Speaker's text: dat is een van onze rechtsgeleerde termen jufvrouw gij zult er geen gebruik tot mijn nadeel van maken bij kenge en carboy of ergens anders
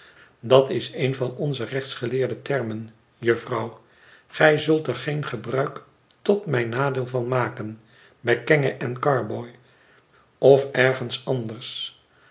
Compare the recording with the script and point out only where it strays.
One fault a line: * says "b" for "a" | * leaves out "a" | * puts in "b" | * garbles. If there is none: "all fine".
all fine